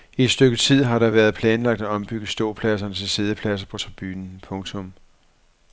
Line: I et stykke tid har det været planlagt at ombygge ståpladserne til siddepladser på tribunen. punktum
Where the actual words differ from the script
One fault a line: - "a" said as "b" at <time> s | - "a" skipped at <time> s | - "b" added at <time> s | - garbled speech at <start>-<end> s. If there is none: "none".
none